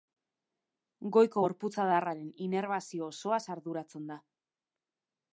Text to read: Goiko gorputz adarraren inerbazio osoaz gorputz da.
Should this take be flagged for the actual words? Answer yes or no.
yes